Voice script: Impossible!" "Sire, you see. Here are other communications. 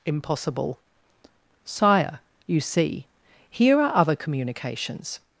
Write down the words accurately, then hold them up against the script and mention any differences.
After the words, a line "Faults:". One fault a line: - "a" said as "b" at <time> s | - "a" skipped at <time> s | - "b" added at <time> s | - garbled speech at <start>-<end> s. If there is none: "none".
Impossible!" "Sire, you see. Here are other communications.
Faults:
none